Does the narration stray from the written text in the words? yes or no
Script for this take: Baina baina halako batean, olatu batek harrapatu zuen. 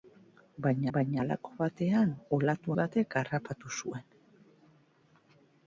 no